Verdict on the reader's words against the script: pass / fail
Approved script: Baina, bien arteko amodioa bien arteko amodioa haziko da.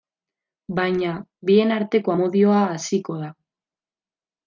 fail